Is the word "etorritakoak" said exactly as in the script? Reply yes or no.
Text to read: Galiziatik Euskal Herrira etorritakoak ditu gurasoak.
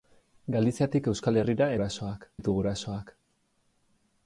no